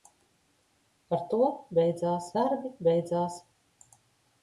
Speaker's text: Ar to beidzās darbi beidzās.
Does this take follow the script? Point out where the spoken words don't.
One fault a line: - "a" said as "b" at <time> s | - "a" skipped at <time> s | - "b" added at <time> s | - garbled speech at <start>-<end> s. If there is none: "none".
none